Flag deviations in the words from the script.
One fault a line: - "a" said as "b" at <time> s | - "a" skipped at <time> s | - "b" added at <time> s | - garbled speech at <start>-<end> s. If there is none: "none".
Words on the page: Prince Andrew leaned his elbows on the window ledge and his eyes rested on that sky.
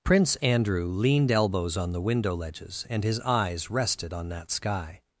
- "his" skipped at 1.3 s
- "ledge" said as "ledges" at 2.4 s